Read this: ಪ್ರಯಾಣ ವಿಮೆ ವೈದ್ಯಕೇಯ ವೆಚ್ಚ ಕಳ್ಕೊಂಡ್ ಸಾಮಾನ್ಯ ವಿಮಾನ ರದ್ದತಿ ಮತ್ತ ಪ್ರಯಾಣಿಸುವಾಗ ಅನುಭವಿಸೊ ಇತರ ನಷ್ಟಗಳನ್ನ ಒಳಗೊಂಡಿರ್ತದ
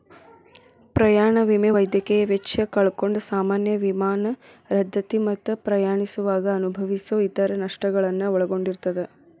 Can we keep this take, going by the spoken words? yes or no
yes